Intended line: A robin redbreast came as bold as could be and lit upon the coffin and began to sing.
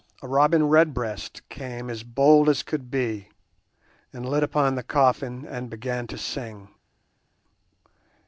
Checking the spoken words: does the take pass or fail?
pass